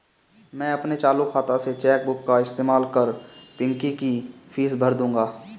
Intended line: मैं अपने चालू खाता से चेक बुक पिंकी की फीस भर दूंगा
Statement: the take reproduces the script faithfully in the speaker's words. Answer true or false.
false